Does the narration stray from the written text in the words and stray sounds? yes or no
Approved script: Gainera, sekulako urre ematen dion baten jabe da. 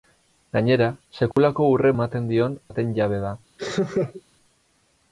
yes